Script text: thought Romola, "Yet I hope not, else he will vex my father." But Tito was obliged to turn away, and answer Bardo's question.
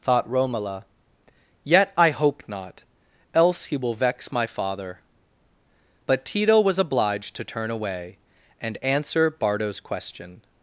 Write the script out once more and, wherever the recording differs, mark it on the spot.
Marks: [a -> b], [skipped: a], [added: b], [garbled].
thought Romola, "Yet I hope not, else he will vex my father." But Tito was obliged to turn away, and answer Bardo's question.